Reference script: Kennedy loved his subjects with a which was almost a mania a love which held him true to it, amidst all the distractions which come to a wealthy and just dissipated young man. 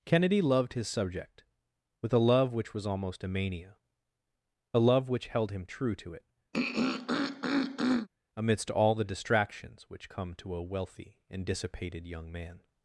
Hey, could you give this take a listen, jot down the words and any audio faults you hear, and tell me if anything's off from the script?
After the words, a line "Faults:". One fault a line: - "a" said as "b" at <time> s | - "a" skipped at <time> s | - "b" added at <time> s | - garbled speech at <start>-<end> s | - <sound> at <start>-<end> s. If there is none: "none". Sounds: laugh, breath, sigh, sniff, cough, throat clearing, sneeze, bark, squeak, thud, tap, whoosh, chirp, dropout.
Kennedy loved his subject with a love which was almost a mania a love which held him true to it, amidst all the distractions which come to a wealthy and dissipated young man.
Faults:
- "subjects" said as "subject" at 0.9 s
- "love" added at 2.2 s
- throat clearing at 6.5-8.1 s
- "just" skipped at 11.4 s